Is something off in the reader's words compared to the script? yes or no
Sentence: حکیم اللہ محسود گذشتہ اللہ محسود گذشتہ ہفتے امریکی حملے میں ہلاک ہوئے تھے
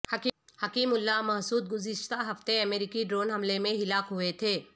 yes